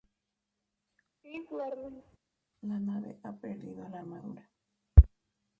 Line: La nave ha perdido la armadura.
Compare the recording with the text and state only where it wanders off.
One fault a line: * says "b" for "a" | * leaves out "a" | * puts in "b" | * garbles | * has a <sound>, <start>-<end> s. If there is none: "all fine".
* has a laugh, 1.2-2.2 s